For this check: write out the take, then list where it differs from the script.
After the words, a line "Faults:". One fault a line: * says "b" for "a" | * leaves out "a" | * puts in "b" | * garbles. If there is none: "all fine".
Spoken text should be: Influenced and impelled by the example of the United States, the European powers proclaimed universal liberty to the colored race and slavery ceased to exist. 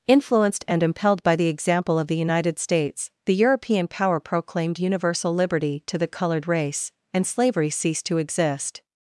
Influenced and impelled by the example of the United States, the European power proclaimed universal liberty to the colored race and slavery ceased to exist.
Faults:
* says "power" for "powers"